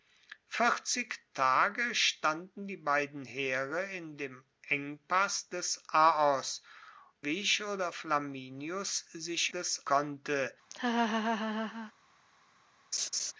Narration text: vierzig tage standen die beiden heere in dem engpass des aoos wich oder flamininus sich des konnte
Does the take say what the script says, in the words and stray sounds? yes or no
no